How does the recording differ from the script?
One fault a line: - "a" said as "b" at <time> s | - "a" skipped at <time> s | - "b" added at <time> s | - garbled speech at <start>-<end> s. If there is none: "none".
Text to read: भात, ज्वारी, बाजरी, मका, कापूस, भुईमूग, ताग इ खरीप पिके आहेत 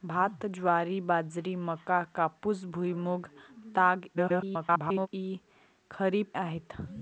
- garbled speech at 4.1-5.1 s
- "पिके" skipped at 6.3 s